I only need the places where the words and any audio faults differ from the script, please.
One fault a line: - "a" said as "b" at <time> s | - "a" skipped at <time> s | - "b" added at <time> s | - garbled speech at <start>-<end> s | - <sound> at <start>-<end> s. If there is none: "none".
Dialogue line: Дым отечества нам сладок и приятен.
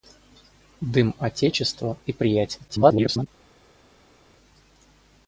- "нам сладок" skipped at 1.9 s
- garbled speech at 2.7-3.3 s